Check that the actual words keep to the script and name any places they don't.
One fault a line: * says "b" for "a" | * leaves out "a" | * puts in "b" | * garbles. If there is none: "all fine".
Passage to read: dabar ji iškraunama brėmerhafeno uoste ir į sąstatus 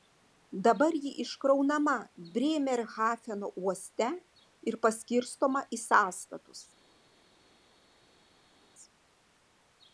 * puts in "paskirstoma"